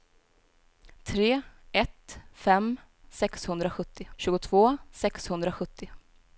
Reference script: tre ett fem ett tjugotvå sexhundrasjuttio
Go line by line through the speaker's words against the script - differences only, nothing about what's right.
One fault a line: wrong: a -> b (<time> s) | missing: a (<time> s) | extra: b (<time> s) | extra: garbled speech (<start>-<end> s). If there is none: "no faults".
wrong: ett -> sexhundrasjuttio (3.1 s)